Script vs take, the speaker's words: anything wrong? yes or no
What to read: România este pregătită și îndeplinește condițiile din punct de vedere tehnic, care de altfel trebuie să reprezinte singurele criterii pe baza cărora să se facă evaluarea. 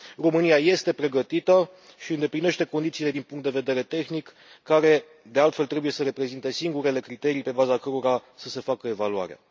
no